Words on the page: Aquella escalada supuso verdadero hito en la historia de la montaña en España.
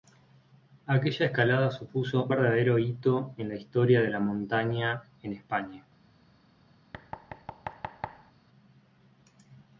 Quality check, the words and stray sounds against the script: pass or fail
fail